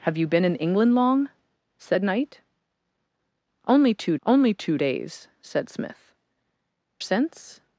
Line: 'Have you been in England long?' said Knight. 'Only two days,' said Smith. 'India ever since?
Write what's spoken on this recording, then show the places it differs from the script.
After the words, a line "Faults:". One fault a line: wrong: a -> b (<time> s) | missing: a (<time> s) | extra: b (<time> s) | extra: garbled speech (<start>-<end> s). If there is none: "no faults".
'Have you been in England long?' said Knight. 'Only two only two days,' said Smith. 'Since?
Faults:
extra: only two (4.3 s)
missing: India ever (6.1 s)